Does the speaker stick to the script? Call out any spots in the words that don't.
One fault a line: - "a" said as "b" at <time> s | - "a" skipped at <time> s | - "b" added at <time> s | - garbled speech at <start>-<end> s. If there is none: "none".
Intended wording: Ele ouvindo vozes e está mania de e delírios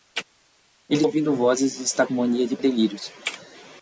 none